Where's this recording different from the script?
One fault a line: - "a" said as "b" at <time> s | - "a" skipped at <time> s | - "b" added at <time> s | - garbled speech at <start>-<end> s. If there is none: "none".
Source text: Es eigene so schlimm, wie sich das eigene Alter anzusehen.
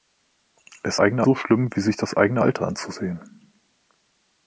none